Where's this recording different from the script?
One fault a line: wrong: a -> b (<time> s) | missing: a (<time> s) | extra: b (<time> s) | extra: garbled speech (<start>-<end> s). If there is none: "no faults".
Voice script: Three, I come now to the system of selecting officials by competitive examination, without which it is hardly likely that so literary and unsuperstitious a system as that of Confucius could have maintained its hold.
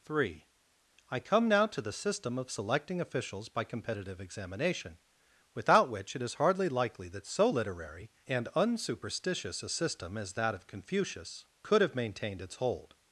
no faults